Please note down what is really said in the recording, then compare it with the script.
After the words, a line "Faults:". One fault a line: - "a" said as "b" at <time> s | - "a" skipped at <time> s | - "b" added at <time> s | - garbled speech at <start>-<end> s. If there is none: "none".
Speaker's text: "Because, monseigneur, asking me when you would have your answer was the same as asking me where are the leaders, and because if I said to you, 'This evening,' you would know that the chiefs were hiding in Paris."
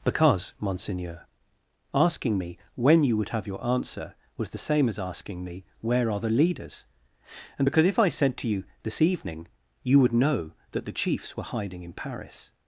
"Because, monseigneur, asking me when you would have your answer was the same as asking me where are the leaders, and because if I said to you, 'This evening,' you would know that the chiefs were hiding in Paris."
Faults:
none